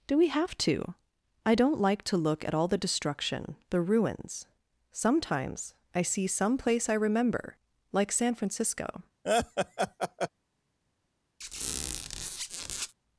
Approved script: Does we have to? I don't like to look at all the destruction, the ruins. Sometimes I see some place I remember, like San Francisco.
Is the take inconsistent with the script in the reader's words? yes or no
yes